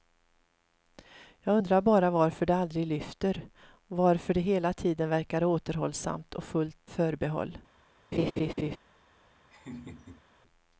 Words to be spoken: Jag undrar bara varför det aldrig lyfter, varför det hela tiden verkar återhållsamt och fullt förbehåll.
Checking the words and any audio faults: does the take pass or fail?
fail